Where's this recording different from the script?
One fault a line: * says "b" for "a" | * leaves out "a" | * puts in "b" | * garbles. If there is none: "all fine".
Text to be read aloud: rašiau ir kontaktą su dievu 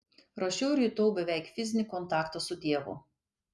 * puts in "jutau beveik fizinį"